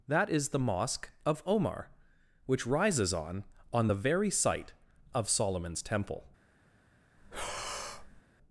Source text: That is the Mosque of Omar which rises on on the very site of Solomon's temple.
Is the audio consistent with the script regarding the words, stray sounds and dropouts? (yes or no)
no